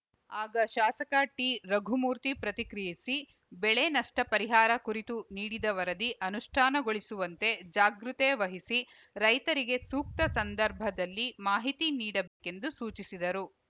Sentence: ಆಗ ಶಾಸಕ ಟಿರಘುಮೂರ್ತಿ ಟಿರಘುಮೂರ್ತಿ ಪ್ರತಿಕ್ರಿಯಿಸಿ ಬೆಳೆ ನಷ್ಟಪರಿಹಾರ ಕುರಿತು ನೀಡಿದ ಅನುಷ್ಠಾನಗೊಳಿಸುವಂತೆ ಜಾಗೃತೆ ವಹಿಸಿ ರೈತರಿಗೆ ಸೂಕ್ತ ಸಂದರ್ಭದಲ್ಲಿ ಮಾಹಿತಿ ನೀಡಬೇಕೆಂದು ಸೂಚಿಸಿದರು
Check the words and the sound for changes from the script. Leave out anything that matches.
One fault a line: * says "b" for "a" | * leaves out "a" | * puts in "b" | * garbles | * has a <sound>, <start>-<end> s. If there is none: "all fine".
* leaves out "ಟಿರಘುಮೂರ್ತಿ"
* puts in "ವರದಿ"
* has a dropout, 12.3-12.4 s